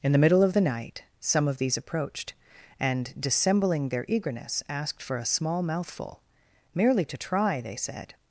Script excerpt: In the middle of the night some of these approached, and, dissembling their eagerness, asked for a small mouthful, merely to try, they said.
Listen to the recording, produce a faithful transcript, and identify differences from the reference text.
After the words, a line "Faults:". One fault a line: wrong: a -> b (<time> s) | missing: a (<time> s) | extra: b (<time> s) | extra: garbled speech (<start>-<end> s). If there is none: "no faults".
In the middle of the night some of these approached, and, dissembling their eagerness, asked for a small mouthful, merely to try, they said.
Faults:
no faults